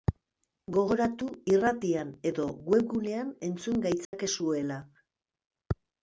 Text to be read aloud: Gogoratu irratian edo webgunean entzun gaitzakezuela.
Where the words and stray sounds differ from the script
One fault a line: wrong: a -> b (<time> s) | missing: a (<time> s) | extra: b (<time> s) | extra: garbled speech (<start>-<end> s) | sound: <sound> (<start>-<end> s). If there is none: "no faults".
sound: dropout (4.0-4.1 s)